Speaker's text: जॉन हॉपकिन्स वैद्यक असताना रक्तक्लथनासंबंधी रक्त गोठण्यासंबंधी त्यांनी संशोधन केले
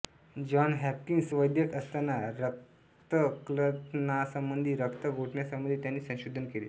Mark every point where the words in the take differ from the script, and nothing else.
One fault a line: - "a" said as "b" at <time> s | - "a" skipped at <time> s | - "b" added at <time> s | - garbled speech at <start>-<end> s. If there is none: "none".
none